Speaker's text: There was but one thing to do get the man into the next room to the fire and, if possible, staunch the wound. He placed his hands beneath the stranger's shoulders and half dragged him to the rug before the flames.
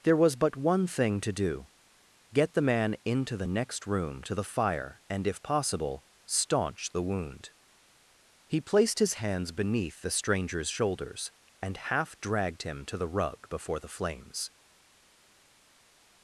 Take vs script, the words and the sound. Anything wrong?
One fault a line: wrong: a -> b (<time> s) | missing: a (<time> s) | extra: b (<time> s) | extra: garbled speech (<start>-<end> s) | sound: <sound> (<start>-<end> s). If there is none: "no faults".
no faults